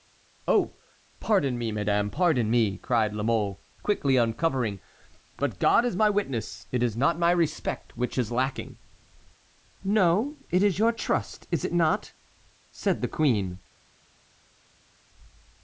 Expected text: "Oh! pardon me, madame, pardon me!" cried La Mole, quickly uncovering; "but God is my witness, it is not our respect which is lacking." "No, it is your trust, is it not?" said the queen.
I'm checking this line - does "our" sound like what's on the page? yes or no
no